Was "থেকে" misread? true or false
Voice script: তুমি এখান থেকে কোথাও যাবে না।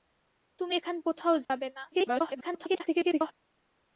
true